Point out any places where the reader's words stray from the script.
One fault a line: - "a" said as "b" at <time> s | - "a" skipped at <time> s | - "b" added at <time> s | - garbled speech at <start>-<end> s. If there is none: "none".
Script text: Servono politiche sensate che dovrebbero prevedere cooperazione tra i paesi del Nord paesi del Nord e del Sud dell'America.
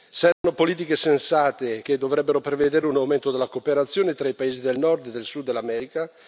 - "un aumento della" added at 2.9 s
- "paesi del Nord" skipped at 5.1 s